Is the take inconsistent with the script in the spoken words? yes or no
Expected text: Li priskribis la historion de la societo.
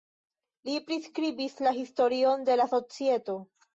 no